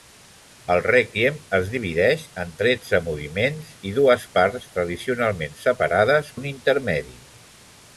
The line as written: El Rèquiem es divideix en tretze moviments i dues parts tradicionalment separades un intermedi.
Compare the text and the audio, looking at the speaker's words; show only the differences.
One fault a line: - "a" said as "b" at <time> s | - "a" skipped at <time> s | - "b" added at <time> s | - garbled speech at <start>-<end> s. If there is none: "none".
none